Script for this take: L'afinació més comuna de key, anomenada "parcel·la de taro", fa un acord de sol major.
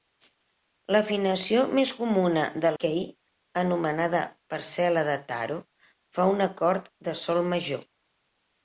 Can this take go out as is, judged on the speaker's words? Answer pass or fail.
pass